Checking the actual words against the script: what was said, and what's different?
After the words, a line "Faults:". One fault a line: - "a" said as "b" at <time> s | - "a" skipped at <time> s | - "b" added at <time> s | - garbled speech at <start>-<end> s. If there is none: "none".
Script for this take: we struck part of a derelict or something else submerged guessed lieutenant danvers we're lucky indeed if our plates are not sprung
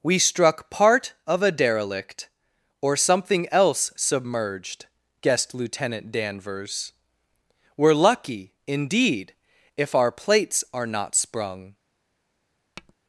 we struck part of a derelict or something else submerged guessed lieutenant danvers we're lucky indeed if our plates are not sprung
Faults:
none